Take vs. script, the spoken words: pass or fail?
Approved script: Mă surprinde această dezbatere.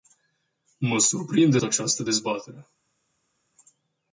pass